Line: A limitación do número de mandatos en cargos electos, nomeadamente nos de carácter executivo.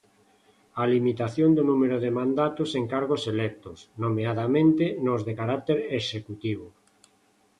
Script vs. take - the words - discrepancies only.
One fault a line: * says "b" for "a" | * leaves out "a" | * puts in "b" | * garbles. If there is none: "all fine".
all fine